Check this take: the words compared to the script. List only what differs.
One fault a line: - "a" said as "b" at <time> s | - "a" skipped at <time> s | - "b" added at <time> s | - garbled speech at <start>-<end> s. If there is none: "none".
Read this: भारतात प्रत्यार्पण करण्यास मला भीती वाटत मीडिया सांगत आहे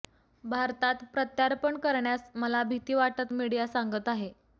none